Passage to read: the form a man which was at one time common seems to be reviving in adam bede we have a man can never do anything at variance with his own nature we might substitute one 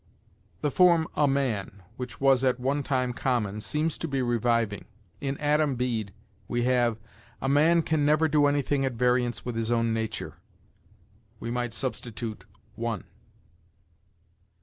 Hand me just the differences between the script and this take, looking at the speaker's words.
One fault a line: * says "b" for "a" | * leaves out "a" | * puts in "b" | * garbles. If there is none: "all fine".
all fine